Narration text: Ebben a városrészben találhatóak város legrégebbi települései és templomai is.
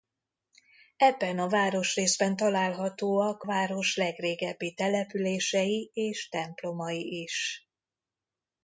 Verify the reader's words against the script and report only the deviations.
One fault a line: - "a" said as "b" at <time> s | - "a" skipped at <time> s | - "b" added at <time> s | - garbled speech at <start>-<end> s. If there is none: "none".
none